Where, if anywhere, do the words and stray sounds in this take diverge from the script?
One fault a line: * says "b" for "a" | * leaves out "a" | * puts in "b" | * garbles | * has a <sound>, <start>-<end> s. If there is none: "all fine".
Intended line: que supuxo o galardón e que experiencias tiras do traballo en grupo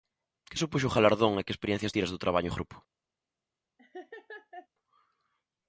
* has a laugh, 3.8-4.7 s